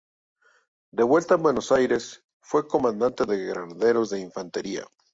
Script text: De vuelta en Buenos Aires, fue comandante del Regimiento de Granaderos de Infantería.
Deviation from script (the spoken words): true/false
true